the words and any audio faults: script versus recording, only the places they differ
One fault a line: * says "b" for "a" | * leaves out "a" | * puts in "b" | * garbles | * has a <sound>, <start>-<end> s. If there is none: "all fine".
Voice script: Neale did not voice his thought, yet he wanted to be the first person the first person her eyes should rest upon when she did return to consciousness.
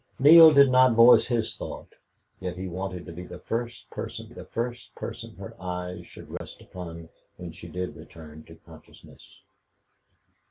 * has a dropout, 6.4-6.4 s